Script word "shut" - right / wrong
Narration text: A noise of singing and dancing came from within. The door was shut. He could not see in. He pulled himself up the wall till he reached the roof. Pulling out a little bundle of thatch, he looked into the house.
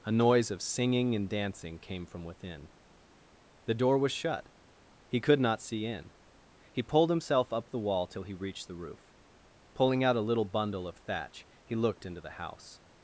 right